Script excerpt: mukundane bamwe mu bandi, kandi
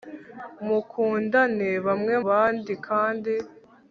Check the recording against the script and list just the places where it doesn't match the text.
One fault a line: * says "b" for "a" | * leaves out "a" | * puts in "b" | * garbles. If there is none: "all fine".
* leaves out "mu"